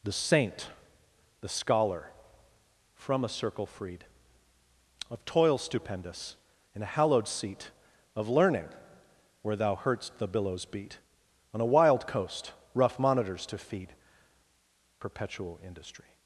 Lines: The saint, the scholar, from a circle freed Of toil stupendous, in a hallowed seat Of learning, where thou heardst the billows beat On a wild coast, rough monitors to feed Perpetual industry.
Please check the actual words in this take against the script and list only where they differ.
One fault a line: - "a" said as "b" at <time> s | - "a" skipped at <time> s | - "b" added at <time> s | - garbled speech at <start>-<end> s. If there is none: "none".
none